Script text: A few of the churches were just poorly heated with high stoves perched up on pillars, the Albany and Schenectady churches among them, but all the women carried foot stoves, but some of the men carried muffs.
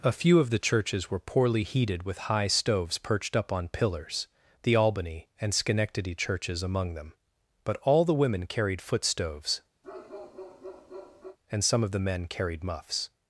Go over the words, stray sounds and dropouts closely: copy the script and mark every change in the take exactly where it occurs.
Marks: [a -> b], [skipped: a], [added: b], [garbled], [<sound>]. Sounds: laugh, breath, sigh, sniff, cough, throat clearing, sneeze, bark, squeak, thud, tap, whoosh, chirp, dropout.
A few of the churches were [skipped: just] poorly heated with high stoves perched up on pillars, the Albany and Schenectady churches among them, but all the women carried foot stoves, [bark] [but -> and] some of the men carried muffs.